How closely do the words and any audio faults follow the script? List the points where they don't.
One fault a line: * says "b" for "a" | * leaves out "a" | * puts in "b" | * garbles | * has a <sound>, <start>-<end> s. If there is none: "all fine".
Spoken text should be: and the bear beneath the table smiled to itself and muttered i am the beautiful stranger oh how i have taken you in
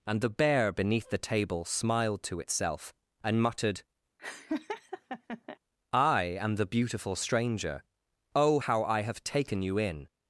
* has a laugh, 4.2-5.6 s